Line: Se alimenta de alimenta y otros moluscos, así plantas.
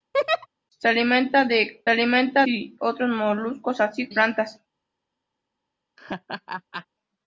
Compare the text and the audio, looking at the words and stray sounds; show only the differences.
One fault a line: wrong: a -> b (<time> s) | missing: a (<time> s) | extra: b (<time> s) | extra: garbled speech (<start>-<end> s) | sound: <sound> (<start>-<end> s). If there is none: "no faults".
sound: laugh (0.1-0.5 s)
sound: laugh (6.0-6.9 s)